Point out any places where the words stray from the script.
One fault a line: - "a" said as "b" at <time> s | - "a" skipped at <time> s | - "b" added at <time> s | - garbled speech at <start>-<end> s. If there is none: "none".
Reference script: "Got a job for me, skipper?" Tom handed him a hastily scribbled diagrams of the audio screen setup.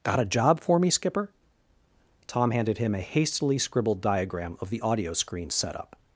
- "diagrams" said as "diagram" at 4.0 s